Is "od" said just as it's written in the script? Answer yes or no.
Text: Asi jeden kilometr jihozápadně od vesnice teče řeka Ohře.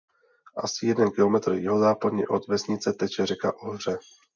yes